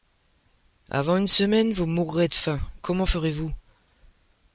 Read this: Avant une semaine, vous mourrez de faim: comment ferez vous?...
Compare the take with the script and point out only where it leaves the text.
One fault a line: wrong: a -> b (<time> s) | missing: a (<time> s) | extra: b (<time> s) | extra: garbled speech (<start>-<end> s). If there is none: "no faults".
no faults